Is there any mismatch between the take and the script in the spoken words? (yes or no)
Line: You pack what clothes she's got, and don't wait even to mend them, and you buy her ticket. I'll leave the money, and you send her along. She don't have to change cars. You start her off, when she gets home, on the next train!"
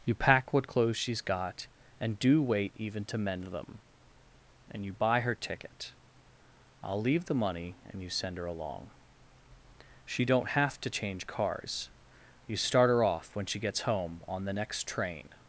yes